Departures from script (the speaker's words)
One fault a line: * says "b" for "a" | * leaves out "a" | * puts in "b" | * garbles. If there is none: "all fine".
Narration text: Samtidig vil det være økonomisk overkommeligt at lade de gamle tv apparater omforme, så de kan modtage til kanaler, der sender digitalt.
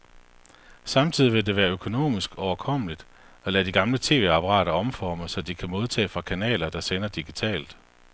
* says "fra" for "til"